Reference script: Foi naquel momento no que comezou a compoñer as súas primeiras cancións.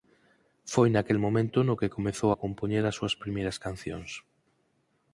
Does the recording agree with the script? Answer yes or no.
yes